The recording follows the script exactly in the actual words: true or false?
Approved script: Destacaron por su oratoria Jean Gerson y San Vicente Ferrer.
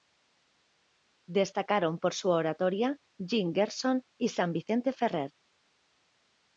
true